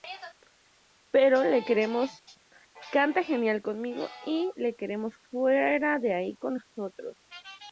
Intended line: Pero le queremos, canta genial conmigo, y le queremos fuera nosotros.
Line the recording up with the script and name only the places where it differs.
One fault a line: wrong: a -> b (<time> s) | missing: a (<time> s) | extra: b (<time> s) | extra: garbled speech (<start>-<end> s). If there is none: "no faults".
extra: de ahí con (6.0 s)